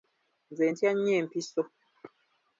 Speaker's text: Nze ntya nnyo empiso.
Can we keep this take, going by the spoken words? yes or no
yes